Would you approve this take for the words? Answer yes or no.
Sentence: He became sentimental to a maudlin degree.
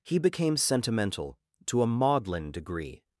yes